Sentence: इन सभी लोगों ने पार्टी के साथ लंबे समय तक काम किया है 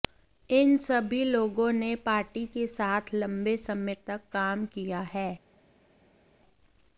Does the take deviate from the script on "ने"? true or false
false